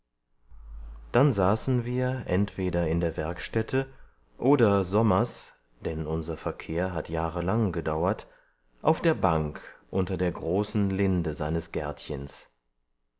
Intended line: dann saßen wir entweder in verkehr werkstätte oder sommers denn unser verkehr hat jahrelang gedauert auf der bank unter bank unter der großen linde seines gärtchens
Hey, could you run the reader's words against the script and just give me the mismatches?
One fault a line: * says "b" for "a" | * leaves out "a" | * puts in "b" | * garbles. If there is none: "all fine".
* says "der" for "verkehr"
* leaves out "bank unter"